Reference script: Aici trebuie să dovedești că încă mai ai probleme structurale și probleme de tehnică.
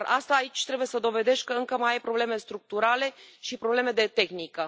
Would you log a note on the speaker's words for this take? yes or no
no